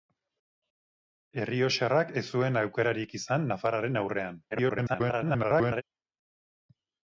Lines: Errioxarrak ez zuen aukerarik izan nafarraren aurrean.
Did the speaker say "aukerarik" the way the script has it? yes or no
yes